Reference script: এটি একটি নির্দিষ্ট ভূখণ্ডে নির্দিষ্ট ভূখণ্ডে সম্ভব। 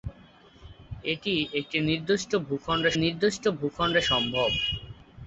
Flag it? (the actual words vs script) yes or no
no